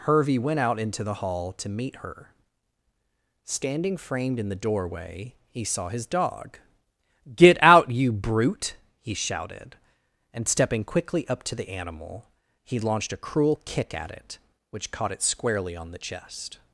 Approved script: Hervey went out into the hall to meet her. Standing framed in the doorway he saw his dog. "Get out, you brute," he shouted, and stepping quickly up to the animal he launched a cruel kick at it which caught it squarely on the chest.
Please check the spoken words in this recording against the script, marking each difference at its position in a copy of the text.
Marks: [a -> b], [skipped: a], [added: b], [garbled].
Hervey went out into the hall to meet her. Standing framed in the doorway he saw his dog. "Get out, you brute," he shouted, and stepping quickly up to the animal he launched a cruel kick at it which caught it squarely on the chest.